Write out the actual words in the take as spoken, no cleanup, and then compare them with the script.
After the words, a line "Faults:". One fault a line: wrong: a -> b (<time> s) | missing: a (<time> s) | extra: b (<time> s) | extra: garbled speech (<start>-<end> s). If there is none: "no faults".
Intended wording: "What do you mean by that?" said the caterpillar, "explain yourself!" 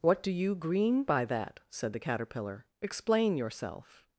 "What do you green by that?" said the caterpillar, "explain yourself!"
Faults:
wrong: mean -> green (0.6 s)